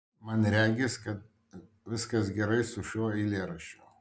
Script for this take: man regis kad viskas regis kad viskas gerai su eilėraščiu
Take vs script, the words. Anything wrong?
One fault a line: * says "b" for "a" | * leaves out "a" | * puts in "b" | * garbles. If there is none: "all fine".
* leaves out "regis kad viskas"
* puts in "šiuo"